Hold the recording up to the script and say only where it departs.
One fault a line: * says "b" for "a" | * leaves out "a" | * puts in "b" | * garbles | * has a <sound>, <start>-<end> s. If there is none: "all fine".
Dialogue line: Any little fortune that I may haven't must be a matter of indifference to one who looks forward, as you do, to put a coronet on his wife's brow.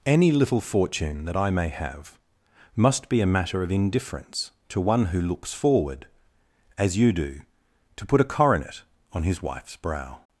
* says "have" for "haven't"